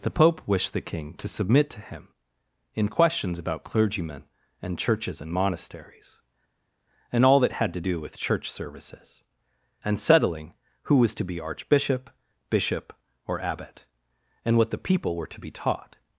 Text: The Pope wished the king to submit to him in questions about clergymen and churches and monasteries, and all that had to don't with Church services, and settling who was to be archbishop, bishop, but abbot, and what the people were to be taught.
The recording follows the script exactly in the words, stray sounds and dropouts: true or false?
false